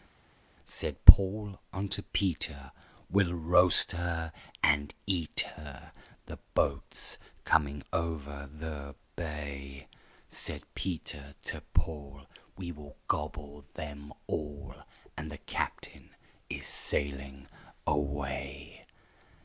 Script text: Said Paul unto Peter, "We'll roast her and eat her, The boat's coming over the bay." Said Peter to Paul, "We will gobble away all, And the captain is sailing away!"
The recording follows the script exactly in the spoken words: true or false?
false